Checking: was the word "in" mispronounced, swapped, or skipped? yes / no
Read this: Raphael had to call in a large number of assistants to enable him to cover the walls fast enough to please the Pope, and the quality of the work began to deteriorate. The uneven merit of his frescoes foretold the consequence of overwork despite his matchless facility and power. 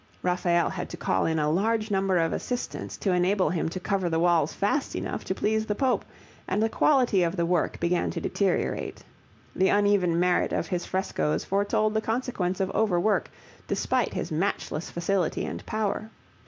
no